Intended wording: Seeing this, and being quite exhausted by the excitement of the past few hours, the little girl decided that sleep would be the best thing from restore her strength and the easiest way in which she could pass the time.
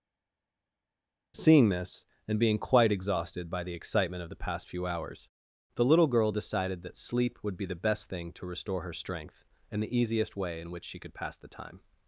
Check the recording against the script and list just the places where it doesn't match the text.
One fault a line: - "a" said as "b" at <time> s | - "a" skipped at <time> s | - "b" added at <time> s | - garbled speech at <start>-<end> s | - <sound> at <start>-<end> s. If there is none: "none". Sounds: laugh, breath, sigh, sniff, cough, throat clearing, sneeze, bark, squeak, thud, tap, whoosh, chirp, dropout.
- "from" said as "to" at 8.3 s